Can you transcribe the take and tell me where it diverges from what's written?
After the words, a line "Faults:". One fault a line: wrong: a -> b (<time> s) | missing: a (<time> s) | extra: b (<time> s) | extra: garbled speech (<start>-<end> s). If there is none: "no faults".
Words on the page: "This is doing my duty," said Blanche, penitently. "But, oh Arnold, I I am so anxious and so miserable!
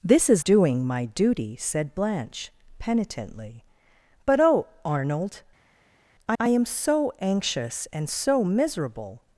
"This is doing my duty," said Blanche, penitently. "But, oh Arnold, I I am so anxious and so miserable!
Faults:
no faults